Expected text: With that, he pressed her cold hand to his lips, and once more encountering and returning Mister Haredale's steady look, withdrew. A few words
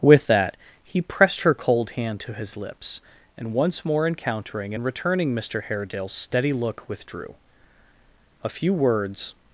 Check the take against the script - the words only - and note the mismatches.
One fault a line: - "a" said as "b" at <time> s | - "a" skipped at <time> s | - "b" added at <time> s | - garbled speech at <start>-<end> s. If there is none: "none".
none